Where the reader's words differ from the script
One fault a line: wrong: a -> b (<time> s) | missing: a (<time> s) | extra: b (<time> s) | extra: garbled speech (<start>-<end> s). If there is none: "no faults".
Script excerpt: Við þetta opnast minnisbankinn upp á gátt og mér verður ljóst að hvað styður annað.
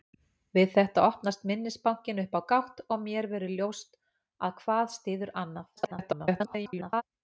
extra: garbled speech (5.8-7.0 s)